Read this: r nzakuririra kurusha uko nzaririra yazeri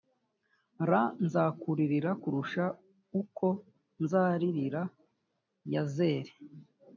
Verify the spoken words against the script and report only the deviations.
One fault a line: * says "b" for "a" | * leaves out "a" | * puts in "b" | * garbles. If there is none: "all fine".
all fine